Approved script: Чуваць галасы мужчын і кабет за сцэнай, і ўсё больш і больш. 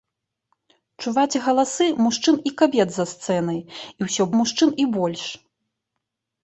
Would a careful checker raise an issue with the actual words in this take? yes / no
yes